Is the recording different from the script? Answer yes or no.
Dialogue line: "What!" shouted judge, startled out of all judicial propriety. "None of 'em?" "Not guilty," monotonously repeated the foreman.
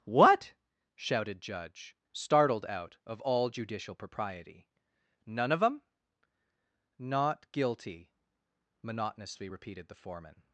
no